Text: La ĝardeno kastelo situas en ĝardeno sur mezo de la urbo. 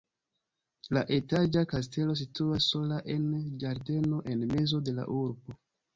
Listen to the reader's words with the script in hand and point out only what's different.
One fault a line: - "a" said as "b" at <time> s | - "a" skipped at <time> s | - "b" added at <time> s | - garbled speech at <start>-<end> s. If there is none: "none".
- "ĝardeno" said as "etaĝa" at 1.2 s
- "sola" added at 2.7 s
- "sur" said as "en" at 4.3 s